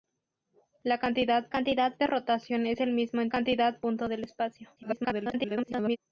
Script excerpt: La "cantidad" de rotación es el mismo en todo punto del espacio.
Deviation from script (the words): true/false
true